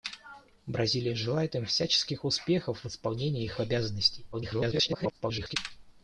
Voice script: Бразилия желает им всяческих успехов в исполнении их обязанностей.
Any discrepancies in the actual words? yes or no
yes